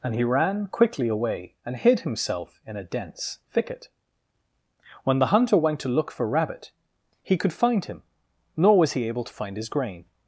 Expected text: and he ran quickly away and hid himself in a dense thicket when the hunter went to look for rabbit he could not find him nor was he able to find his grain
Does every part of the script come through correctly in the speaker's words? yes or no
no